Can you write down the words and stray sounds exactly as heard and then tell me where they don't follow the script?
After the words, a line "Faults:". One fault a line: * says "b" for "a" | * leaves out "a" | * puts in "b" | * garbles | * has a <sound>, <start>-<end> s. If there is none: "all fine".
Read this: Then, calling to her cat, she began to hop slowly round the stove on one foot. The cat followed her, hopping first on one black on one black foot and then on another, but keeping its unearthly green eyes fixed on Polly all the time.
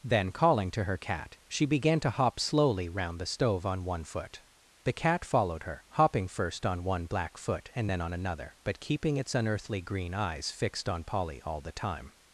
Then, calling to her cat, she began to hop slowly round the stove on one foot. The cat followed her, hopping first on one black foot and then on another, but keeping its unearthly green eyes fixed on Polly all the time.
Faults:
* leaves out "on one black"